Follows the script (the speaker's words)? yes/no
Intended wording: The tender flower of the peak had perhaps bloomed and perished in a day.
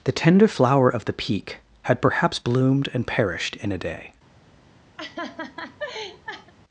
yes